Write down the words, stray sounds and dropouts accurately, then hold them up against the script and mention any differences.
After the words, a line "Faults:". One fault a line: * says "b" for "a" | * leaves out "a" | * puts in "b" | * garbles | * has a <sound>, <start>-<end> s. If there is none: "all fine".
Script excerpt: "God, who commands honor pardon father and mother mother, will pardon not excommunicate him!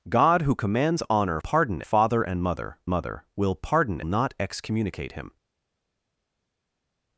"God, who commands honor pardon father and mother mother, will pardon not excommunicate him!
Faults:
all fine